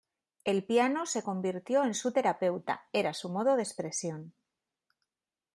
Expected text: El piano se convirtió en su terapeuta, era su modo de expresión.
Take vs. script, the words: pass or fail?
pass